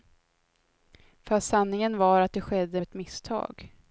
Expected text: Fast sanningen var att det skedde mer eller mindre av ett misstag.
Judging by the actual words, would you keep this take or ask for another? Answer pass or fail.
fail